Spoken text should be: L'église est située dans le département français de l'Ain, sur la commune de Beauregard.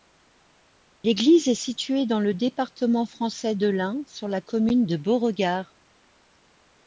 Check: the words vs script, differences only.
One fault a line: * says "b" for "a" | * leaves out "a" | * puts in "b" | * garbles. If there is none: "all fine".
all fine